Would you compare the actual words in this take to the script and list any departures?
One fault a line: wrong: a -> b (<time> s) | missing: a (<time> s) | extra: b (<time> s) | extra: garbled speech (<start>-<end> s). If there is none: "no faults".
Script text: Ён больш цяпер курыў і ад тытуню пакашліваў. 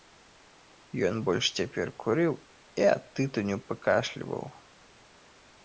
no faults